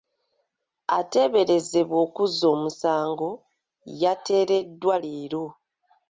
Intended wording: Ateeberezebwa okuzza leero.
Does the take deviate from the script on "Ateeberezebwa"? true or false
false